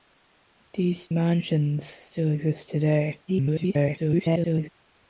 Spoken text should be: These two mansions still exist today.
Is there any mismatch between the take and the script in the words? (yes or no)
yes